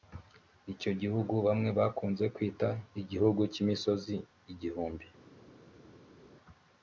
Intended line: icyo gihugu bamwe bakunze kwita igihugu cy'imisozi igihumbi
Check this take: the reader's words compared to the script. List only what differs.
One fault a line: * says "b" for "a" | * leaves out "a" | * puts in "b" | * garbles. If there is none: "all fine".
all fine